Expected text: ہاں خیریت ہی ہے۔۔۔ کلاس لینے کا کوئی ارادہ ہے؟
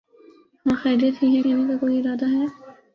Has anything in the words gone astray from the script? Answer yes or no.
yes